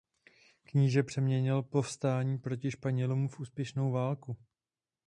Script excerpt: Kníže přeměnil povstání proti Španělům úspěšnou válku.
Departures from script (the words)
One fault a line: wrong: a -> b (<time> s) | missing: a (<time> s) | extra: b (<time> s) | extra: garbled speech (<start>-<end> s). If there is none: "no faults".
extra: v (3.3 s)